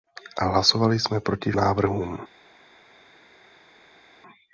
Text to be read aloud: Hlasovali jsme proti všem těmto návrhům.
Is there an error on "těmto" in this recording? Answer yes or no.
yes